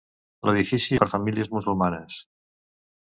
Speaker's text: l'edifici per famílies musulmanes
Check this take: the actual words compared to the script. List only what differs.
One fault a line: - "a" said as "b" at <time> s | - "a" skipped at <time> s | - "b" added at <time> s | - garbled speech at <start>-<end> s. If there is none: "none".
none